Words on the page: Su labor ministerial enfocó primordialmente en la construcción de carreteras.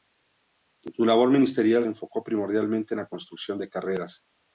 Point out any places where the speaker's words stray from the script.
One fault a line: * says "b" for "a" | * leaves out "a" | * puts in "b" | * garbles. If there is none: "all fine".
all fine